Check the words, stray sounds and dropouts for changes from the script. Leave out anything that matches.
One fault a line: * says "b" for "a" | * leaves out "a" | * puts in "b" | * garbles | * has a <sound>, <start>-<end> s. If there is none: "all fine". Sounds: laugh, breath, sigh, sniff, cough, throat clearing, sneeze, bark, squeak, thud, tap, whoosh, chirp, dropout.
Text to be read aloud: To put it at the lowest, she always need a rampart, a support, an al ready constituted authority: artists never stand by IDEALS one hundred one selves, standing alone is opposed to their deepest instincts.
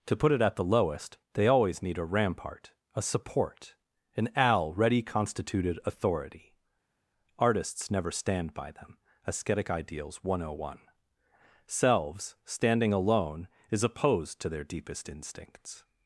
* says "they" for "she"
* puts in "them ASCETIC"